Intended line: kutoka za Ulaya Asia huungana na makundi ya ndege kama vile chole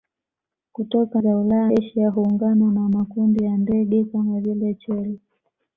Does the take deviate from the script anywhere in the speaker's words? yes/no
no